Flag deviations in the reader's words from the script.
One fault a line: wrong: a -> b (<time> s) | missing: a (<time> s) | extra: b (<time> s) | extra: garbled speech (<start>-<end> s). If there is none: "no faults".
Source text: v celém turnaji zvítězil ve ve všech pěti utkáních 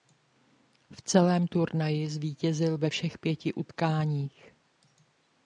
missing: ve (2.9 s)